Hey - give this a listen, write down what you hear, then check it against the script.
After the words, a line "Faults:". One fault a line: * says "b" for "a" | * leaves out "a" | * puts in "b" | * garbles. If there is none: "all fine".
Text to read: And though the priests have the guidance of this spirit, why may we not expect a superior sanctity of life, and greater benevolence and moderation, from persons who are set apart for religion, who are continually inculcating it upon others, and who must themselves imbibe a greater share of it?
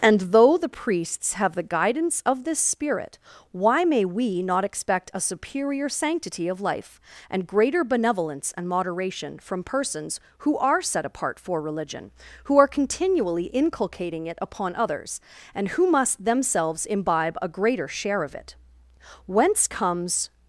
And though the priests have the guidance of this spirit, why may we not expect a superior sanctity of life, and greater benevolence and moderation, from persons who are set apart for religion, who are continually inculcating it upon others, and who must themselves imbibe a greater share of it? Whence comes
Faults:
* puts in "Whence comes"